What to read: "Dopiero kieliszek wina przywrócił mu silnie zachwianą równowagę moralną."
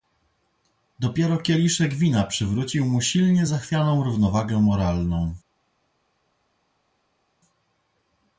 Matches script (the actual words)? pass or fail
pass